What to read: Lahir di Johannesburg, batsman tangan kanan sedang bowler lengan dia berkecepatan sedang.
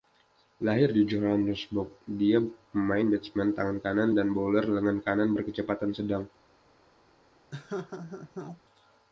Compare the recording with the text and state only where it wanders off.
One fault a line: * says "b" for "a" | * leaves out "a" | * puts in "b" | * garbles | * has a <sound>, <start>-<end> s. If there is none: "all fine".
* puts in "dia pemain"
* says "dan" for "sedang"
* says "kanan" for "dia"
* has a laugh, 7.5-8.6 s